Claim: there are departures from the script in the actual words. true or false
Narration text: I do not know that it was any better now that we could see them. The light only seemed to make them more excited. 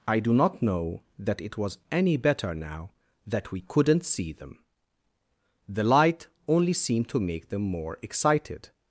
true